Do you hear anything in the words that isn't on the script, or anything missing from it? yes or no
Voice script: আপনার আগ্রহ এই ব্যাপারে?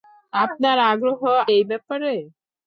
no